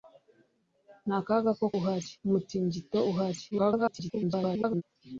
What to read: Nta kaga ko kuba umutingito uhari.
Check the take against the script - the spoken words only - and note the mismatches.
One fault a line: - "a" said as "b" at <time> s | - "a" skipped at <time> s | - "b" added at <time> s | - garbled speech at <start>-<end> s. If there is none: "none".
- "kuba" said as "uhari" at 1.8 s
- garbled speech at 3.5-4.8 s